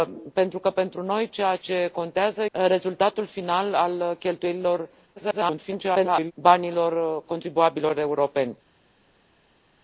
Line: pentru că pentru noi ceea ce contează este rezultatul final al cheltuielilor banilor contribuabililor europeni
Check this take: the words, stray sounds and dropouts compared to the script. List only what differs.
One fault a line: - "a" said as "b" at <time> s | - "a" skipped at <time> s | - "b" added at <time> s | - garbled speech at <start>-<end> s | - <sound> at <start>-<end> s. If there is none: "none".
- "este" skipped at 2.5 s
- garbled speech at 5.2-6.3 s